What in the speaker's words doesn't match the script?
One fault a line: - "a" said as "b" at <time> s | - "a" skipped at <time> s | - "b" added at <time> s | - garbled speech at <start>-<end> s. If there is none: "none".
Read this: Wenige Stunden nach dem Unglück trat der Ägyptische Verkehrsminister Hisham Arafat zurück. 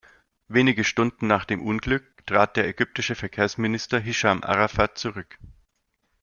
none